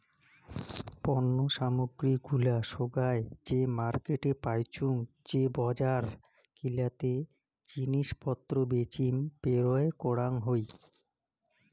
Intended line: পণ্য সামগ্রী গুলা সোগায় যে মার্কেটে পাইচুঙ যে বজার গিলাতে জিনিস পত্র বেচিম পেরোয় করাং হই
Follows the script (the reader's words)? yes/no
yes